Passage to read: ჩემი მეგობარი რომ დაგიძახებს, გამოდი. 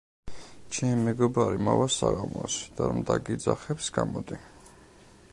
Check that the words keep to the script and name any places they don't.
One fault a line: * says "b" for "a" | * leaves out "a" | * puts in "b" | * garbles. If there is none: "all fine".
* puts in "მოვა საღამოს და"